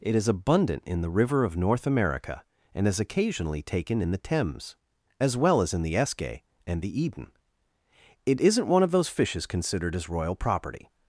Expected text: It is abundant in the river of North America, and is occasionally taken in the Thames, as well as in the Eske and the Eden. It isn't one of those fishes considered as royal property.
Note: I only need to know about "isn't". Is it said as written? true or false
true